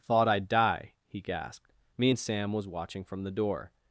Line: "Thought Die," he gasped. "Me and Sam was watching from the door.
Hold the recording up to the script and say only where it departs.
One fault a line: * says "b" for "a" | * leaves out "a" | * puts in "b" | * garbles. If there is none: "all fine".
* puts in "I'd"